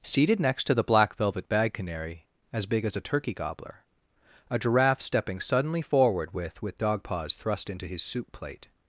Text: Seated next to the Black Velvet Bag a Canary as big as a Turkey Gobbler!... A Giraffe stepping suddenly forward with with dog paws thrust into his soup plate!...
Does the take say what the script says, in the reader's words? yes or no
no